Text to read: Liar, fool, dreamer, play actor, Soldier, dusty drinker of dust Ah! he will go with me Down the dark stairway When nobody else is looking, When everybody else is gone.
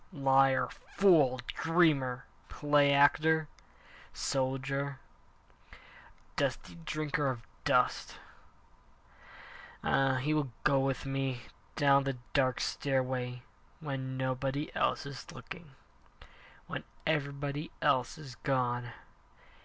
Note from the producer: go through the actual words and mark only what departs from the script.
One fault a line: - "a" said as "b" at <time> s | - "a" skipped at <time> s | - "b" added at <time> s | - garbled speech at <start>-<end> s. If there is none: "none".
none